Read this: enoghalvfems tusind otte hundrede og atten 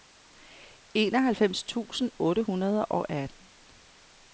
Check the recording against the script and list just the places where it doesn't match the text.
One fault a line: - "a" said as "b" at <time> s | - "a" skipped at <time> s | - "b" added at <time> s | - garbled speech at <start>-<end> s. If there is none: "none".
none